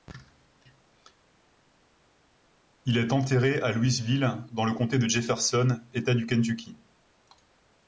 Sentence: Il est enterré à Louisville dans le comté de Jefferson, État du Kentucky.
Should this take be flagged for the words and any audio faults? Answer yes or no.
no